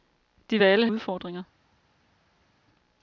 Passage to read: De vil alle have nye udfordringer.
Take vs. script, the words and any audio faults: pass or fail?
fail